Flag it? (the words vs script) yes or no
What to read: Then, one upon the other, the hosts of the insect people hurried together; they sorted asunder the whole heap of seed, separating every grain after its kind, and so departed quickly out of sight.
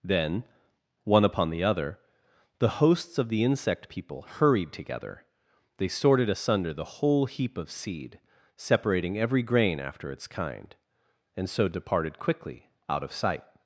no